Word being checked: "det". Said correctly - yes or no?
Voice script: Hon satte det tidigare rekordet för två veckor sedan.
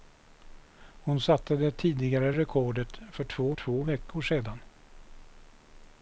yes